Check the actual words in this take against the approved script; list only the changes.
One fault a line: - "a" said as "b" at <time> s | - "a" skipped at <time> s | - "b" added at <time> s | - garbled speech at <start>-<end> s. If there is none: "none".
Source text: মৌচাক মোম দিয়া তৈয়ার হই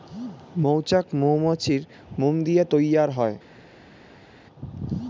- "মৌমাছির" added at 1.1 s